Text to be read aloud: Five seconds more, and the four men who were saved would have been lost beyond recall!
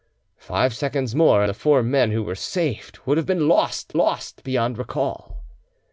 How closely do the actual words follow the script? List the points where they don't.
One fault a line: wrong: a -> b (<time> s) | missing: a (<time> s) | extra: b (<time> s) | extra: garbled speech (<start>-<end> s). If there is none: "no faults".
missing: and (1.4 s)
extra: lost (4.0 s)